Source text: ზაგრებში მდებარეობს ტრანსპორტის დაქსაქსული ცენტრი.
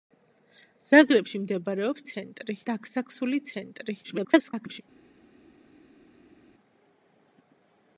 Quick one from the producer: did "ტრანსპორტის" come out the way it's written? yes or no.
no